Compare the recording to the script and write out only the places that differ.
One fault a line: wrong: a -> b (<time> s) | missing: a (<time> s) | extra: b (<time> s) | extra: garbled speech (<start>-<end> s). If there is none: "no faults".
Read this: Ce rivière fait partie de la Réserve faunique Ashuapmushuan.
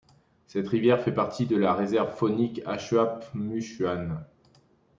wrong: Ce -> Cette (0.5 s)